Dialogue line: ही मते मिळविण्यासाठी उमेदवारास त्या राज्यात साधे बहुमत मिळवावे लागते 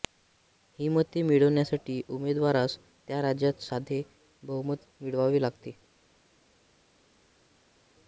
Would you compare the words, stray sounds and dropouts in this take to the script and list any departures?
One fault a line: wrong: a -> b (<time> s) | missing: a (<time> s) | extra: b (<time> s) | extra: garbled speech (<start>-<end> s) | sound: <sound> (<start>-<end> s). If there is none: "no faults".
no faults